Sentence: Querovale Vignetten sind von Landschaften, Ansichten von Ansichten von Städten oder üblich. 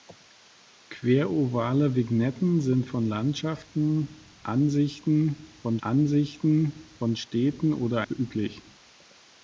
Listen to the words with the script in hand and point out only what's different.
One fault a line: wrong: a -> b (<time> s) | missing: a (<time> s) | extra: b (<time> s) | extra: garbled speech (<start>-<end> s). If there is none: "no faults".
no faults